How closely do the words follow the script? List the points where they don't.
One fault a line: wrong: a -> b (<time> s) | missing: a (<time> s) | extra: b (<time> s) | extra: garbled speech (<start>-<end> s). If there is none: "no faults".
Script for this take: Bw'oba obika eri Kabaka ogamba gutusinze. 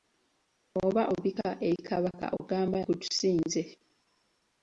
no faults